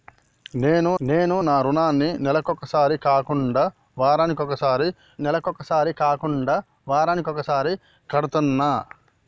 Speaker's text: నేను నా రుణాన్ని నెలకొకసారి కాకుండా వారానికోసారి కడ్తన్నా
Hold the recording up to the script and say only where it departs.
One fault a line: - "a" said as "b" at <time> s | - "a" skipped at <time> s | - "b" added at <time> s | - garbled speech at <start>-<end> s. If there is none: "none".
- "నేను" added at 1.0 s
- "నెలకొకసారి కాకుండా వారానికోసారి" added at 5.2 s